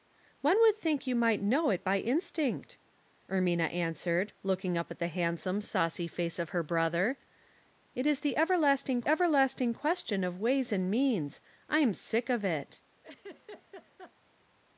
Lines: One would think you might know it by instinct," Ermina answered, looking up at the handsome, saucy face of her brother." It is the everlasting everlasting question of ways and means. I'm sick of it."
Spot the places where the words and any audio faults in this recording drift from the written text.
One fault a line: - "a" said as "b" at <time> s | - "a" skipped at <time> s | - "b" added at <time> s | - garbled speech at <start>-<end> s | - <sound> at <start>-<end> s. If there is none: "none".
- laugh at 13.0-14.1 s